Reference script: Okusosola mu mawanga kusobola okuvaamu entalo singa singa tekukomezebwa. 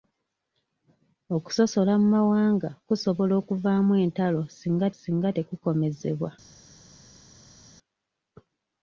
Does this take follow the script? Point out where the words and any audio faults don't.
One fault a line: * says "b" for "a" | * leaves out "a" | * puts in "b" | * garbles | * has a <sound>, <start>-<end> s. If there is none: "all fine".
all fine